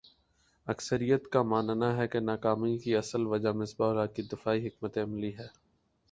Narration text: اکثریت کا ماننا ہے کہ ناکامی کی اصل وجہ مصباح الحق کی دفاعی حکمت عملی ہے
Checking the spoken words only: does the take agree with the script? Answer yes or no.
yes